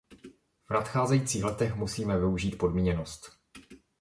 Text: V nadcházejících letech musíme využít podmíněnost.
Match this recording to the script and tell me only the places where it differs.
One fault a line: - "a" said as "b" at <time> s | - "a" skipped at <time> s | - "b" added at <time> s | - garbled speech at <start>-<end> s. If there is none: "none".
none